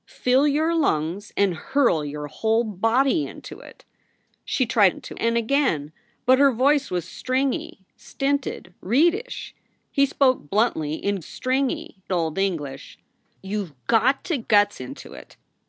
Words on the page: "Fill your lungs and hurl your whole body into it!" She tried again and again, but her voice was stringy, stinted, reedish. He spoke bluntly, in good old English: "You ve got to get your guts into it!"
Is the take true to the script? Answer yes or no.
no